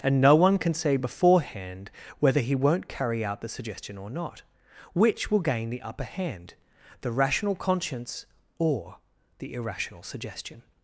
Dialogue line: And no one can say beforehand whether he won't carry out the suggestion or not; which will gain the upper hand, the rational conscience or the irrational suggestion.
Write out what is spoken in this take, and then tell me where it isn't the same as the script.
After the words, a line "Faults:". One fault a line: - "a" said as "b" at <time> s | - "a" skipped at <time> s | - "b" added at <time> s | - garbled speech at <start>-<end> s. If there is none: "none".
And no one can say beforehand whether he won't carry out the suggestion or not; which will gain the upper hand, the rational conscience or the irrational suggestion.
Faults:
none